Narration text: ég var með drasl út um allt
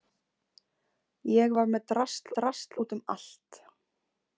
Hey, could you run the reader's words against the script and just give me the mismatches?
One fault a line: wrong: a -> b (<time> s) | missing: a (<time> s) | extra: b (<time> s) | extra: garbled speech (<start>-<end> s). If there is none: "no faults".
extra: drasl (2.4 s)